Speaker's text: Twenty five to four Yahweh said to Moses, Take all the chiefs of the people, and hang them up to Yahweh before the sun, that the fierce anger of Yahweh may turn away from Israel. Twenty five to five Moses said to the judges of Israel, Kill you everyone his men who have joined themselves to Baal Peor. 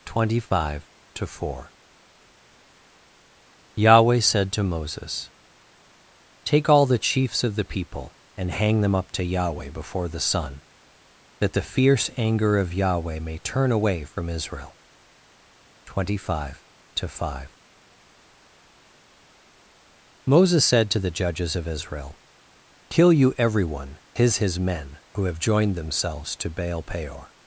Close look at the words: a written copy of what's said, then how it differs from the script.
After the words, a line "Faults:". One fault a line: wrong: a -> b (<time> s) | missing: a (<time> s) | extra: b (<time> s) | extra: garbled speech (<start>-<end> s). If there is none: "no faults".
Twenty five to four Yahweh said to Moses, Take all the chiefs of the people, and hang them up to Yahweh before the sun, that the fierce anger of Yahweh may turn away from Israel. Twenty five to five Moses said to the judges of Israel, Kill you everyone his his men who have joined themselves to Baal Peor.
Faults:
extra: his (24.4 s)